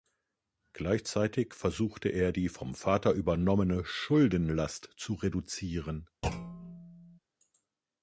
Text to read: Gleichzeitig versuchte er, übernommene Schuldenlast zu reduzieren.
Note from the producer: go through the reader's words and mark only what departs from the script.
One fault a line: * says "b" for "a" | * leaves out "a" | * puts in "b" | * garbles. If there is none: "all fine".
* puts in "die vom Vater"